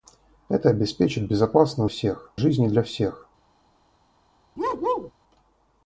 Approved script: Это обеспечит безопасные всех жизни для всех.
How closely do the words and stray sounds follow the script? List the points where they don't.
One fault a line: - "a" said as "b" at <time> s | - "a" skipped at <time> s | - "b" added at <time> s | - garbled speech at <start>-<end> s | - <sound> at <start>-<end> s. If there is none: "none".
- bark at 4.6-5.1 s